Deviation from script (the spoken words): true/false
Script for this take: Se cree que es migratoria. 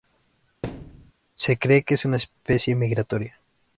true